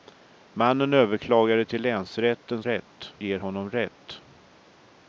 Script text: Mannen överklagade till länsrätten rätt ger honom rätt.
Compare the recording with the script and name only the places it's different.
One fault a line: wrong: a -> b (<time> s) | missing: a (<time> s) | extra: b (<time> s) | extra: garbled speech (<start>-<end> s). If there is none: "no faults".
no faults